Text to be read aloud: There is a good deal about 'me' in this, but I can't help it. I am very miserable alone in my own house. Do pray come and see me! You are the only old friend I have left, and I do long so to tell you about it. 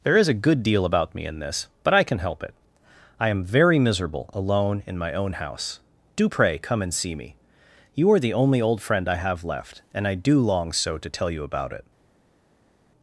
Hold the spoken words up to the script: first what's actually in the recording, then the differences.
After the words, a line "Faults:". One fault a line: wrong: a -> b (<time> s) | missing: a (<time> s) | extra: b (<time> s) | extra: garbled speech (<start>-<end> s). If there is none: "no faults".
There is a good deal about 'me' in this, but I can help it. I am very miserable alone in my own house. Do pray come and see me! You are the only old friend I have left, and I do long so to tell you about it.
Faults:
wrong: can't -> can (2.0 s)